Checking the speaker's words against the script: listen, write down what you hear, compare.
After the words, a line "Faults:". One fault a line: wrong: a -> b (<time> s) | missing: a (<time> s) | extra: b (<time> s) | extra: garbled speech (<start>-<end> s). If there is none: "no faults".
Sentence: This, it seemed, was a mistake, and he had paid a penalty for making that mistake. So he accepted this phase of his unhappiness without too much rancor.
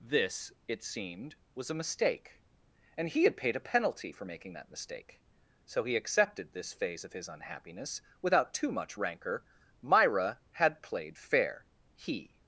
This, it seemed, was a mistake, and he had paid a penalty for making that mistake. So he accepted this phase of his unhappiness without too much rancor. Myra had played fair, he
Faults:
extra: Myra had played fair he (9.8 s)